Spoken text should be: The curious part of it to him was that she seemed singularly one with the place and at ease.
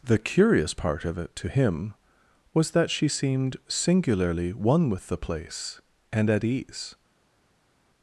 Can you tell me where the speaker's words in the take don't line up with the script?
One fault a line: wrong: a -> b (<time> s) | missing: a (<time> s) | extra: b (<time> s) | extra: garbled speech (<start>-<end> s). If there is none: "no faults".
no faults